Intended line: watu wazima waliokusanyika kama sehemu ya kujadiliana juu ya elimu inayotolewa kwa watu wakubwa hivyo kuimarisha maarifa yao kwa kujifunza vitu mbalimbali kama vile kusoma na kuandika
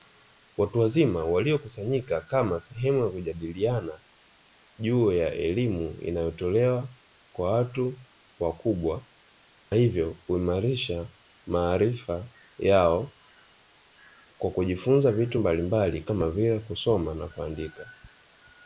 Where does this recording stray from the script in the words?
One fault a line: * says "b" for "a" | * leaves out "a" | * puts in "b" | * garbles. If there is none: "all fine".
all fine